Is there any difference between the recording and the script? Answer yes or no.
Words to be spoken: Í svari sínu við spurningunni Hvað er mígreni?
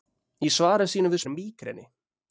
yes